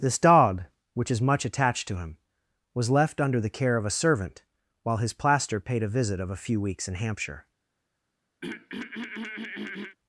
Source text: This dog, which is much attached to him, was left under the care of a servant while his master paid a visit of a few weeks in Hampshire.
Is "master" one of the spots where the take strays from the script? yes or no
yes